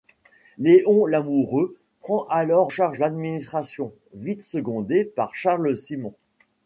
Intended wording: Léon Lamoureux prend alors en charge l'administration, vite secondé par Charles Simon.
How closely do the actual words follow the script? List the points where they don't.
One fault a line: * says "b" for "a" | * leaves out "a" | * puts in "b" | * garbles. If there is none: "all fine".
* leaves out "en"